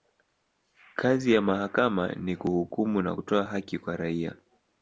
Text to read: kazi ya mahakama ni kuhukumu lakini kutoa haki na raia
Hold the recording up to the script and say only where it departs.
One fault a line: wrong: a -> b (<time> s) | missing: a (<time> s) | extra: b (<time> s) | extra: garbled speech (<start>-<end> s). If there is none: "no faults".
wrong: lakini -> na (3.0 s)
wrong: na -> kwa (3.8 s)